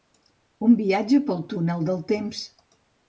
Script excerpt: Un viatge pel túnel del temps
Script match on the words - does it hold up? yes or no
yes